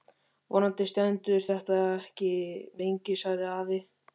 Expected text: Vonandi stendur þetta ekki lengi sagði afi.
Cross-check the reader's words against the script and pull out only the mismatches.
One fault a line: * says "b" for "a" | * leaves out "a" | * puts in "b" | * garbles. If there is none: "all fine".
all fine